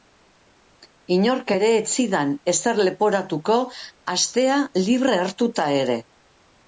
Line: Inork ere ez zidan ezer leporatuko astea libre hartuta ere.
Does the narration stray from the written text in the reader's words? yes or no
no